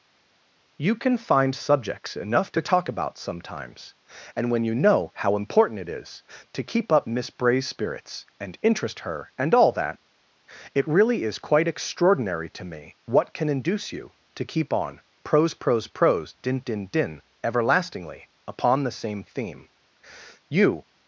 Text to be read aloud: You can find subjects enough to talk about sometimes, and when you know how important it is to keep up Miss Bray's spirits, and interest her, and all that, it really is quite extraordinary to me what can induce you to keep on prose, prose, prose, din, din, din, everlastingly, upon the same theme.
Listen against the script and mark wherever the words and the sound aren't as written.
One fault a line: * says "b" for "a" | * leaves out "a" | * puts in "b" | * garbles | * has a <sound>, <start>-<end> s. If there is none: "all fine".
* puts in "You"